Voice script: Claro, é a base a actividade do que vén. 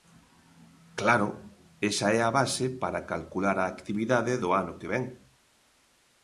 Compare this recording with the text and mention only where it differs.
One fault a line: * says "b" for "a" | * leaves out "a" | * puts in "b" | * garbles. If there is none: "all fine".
* puts in "esa"
* puts in "para calcular"
* puts in "ano"